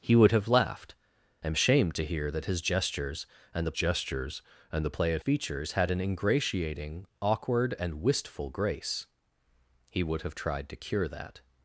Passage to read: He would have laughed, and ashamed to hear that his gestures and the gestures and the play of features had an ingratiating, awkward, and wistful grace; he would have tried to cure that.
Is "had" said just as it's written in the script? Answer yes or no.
yes